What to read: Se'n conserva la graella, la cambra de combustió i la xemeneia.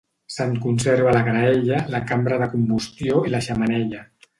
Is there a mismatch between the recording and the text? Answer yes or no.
no